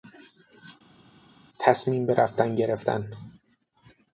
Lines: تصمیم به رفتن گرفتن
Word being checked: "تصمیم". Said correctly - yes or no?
yes